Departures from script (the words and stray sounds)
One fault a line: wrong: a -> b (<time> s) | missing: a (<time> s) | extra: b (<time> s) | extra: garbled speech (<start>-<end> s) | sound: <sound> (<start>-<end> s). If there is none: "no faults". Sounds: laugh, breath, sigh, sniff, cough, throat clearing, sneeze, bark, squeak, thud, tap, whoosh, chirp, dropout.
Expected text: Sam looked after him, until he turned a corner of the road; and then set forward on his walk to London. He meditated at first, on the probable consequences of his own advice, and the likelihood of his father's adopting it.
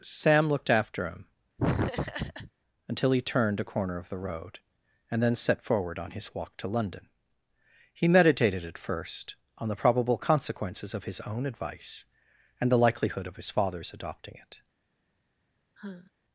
sound: laugh (1.6-2.5 s)
sound: sigh (15.8-16.1 s)